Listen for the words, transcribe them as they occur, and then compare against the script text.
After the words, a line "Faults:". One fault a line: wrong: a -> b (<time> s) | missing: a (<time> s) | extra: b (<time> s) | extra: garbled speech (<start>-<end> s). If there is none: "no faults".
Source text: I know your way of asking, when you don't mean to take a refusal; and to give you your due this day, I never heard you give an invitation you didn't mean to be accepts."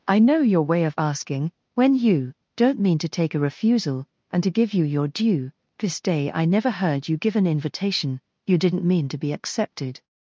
I know your way of asking, when you don't mean to take a refusal; and to give you your due this day, I never heard you give an invitation you didn't mean to be accepted."
Faults:
wrong: accepts -> accepted (9.3 s)